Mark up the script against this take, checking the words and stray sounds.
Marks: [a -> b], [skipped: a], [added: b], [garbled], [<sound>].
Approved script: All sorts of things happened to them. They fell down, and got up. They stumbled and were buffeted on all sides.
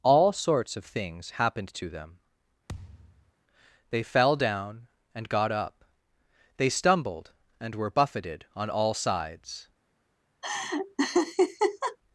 All sorts of things happened to them. [thud] They fell down, and got up. They stumbled and were buffeted on all sides. [laugh]